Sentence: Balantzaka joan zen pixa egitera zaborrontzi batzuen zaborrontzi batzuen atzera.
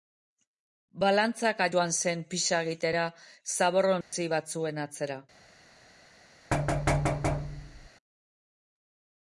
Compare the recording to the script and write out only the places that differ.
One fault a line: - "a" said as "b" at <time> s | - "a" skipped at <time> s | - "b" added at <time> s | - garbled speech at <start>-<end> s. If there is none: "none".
- "zaborrontzi batzuen" skipped at 4.9 s